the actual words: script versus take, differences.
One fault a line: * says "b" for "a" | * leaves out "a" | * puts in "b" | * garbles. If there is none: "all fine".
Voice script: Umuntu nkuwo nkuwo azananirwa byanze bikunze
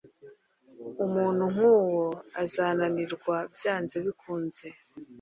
* leaves out "nkuwo"